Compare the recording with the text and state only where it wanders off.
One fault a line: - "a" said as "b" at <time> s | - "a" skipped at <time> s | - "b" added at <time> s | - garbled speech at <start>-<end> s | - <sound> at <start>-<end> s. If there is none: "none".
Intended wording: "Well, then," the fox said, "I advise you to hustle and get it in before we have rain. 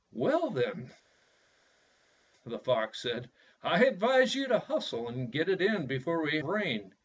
- "have" skipped at 6.4 s